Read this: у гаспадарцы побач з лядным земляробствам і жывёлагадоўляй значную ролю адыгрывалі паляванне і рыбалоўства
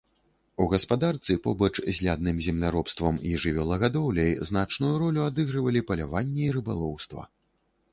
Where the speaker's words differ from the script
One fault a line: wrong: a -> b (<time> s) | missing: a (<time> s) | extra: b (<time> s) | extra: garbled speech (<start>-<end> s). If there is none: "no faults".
no faults